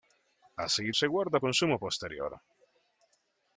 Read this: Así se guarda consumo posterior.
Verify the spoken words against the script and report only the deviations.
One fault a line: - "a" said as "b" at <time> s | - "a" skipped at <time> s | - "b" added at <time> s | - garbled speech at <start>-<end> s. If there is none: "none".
none